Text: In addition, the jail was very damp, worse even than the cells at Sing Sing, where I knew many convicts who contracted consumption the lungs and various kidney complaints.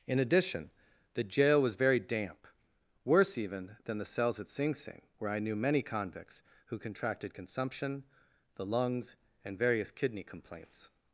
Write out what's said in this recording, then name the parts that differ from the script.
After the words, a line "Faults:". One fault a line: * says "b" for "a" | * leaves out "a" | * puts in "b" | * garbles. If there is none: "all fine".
In addition, the jail was very damp, worse even than the cells at Sing Sing, where I knew many convicts who contracted consumption the lungs and various kidney complaints.
Faults:
all fine